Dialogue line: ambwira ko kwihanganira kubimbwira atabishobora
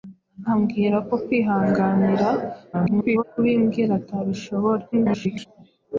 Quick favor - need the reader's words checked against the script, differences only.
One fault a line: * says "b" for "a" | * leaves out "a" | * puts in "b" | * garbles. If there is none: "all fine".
* garbles
* garbles